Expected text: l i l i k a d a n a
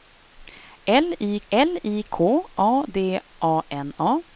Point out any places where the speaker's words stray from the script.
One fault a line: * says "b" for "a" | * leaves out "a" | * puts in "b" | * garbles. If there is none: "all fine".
all fine